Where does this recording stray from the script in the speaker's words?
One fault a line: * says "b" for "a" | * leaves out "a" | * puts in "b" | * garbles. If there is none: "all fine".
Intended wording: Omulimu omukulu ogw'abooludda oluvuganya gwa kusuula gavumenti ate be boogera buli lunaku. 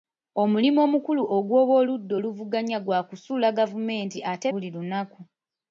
* leaves out "be boogera"